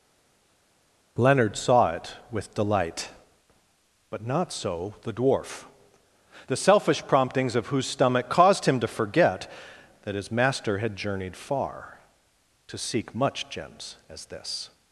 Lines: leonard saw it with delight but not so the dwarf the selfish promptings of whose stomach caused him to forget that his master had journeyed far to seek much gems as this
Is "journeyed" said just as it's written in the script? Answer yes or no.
yes